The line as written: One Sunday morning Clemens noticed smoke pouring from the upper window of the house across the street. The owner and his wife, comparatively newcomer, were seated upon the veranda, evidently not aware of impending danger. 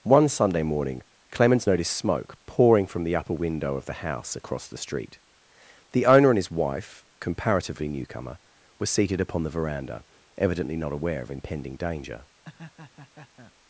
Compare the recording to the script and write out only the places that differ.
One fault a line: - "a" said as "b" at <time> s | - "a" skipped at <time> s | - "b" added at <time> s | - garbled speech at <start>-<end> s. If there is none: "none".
none